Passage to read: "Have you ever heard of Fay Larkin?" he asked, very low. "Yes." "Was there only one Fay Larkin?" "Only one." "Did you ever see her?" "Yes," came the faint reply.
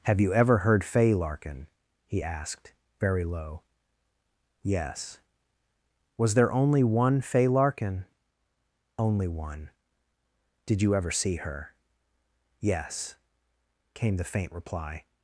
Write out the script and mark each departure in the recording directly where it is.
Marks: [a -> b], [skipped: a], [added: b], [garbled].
"Have you ever heard [skipped: of] Fay Larkin?" he asked, very low. "Yes." "Was there only one Fay Larkin?" "Only one." "Did you ever see her?" "Yes," came the faint reply.